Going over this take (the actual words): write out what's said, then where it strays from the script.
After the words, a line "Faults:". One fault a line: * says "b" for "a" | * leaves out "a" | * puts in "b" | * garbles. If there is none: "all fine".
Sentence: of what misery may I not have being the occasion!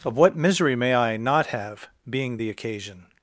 of what misery may I not have being the occasion!
Faults:
all fine